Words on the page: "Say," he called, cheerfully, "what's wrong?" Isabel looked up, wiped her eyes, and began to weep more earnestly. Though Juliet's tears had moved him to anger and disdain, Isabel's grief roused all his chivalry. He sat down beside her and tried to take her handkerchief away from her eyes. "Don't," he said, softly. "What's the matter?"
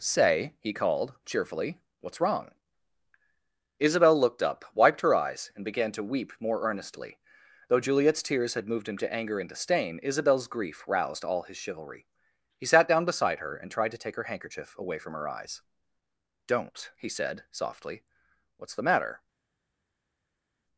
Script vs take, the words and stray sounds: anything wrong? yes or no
no